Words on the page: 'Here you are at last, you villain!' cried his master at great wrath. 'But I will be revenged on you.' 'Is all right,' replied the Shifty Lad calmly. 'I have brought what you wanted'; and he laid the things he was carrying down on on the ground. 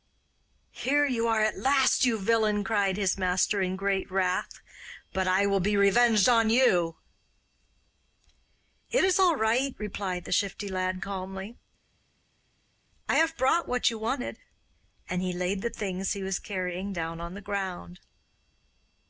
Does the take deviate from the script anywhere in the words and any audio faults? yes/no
yes